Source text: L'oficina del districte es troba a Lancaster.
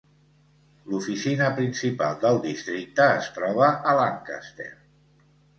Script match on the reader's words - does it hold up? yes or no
no